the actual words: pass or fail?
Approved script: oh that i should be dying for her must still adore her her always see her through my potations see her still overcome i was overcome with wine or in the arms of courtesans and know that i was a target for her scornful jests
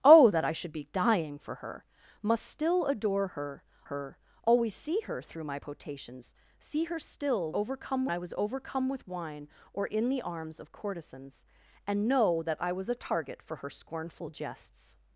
pass